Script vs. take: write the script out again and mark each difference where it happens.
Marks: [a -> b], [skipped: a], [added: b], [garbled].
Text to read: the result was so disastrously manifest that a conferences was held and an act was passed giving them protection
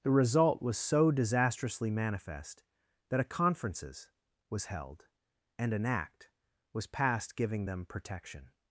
the result was so disastrously manifest that a conferences was held and an act was passed giving them protection